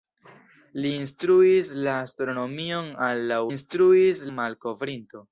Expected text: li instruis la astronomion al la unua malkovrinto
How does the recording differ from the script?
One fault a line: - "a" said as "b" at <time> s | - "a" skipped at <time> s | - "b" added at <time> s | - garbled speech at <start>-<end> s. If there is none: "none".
- "unua" said as "instruis" at 3.5 s